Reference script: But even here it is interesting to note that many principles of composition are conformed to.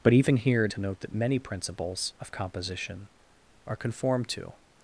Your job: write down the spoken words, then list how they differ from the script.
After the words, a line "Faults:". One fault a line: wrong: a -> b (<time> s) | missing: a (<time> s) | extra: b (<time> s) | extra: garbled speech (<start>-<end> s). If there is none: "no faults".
But even here it to note that many principles of composition are conformed to.
Faults:
missing: is interesting (0.7 s)